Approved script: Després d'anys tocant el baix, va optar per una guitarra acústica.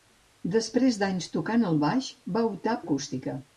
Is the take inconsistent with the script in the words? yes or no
yes